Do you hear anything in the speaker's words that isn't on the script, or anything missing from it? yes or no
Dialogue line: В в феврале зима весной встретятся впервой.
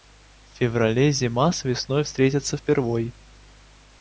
yes